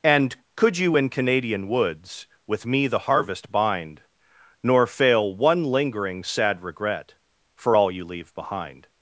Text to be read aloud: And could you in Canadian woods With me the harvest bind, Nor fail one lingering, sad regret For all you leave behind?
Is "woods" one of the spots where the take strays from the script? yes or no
no